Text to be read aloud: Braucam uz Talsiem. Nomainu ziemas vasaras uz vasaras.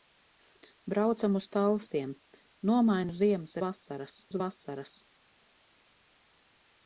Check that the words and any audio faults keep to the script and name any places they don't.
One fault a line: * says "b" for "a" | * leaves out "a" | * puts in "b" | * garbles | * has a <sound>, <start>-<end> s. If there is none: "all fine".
all fine